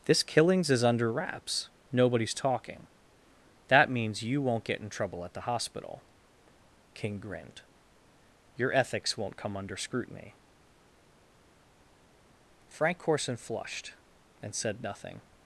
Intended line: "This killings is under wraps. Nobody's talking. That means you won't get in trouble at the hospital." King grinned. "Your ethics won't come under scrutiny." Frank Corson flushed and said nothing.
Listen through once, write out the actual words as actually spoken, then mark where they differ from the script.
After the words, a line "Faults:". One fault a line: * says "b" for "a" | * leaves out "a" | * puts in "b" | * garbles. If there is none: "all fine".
"This killings is under wraps. Nobody's talking. That means you won't get in trouble at the hospital." King grinned. "Your ethics won't come under scrutiny." Frank Corson flushed and said nothing.
Faults:
all fine